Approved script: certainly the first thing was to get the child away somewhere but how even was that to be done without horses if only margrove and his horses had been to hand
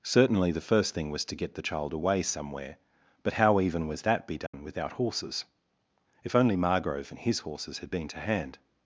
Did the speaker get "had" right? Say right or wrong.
right